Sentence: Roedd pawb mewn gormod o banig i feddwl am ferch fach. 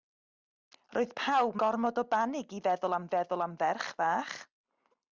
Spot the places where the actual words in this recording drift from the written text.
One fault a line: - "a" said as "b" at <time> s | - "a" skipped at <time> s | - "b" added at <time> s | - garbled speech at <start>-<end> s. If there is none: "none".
- "mewn" skipped at 1.6 s
- "feddwl am" added at 3.2 s